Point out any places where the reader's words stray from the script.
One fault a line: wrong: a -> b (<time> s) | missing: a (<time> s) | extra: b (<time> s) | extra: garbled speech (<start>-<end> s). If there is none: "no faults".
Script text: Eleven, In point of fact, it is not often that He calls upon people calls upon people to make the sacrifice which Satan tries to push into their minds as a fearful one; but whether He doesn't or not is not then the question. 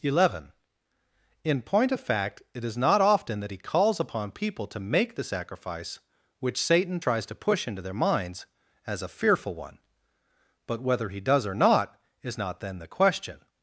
missing: calls upon people (4.7 s)
wrong: doesn't -> does (11.2 s)